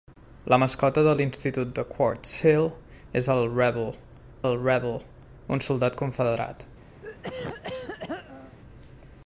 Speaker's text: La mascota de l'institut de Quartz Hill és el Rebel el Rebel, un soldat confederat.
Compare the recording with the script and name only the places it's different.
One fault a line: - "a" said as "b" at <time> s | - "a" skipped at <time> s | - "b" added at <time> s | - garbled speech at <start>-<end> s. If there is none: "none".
none